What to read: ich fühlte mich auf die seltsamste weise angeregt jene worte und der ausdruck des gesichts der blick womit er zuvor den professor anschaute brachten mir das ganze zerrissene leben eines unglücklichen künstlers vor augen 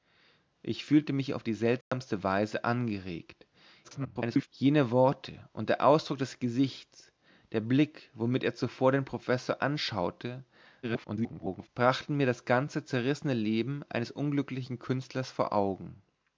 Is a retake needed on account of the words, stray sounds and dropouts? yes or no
yes